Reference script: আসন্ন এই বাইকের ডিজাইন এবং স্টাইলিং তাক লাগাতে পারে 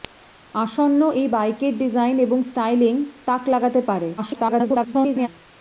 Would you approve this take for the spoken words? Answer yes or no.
no